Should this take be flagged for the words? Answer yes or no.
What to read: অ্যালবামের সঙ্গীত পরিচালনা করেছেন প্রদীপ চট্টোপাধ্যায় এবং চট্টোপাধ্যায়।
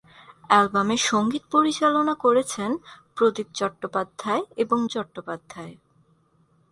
no